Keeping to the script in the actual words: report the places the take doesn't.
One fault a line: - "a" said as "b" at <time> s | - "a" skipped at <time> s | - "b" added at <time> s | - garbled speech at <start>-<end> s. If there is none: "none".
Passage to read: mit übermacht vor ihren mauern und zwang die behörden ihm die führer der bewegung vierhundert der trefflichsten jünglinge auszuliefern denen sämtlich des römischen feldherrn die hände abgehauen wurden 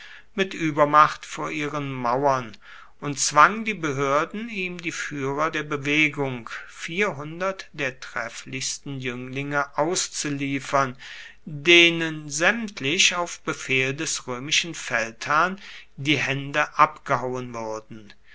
- "auf befehl" added at 13.1 s